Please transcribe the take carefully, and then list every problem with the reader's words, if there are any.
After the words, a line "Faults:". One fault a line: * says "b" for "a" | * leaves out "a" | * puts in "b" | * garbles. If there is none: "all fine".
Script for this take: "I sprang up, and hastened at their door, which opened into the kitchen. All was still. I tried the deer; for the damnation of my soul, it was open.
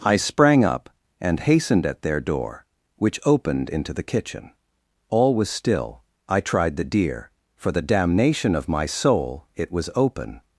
"I sprang up, and hastened at their door, which opened into the kitchen. All was still. I tried the deer; for the damnation of my soul, it was open.
Faults:
all fine